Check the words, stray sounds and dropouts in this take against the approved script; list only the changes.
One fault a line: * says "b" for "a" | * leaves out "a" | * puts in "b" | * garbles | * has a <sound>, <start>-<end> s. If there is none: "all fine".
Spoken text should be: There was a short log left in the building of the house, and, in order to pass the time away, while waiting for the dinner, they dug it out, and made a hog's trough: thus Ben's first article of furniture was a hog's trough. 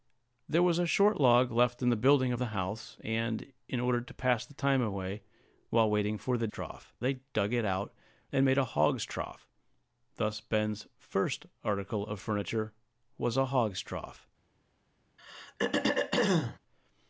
* says "trough" for "dinner"
* has a throat clearing, 15.2-16.6 s